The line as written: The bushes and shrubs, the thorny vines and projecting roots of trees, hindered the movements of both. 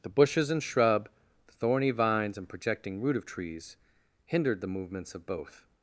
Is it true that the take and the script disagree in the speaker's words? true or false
true